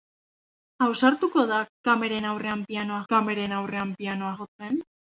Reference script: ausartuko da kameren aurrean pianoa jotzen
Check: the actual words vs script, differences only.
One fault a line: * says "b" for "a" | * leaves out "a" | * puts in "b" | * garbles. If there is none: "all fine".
* puts in "kameren aurrean pianoa"